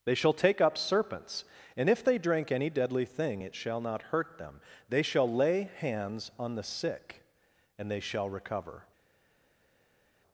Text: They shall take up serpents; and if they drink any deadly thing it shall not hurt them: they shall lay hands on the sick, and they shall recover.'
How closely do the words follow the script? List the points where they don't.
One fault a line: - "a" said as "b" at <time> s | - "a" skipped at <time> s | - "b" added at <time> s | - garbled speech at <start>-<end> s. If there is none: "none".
none